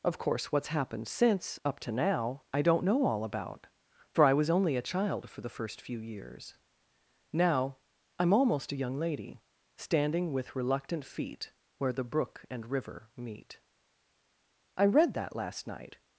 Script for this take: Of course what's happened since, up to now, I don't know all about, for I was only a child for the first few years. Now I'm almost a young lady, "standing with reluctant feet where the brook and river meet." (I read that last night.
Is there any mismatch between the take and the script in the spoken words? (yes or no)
no